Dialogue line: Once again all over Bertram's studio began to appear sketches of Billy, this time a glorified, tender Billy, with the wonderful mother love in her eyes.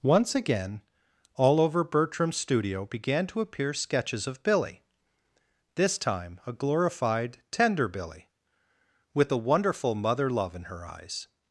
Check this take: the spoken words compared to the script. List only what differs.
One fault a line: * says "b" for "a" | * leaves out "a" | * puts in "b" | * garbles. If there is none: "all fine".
all fine